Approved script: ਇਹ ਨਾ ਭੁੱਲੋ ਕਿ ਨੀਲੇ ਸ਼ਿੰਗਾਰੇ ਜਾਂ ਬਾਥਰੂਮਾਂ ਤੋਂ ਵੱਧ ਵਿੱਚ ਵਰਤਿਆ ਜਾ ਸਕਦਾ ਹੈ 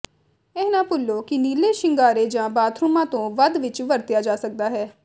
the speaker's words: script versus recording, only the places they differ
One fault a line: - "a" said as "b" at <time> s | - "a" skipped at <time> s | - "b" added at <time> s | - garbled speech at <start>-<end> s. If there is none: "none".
none